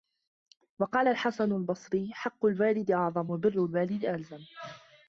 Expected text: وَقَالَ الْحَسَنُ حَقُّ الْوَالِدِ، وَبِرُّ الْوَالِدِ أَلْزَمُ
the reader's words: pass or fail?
fail